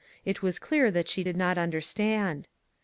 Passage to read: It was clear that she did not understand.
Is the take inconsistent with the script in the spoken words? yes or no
no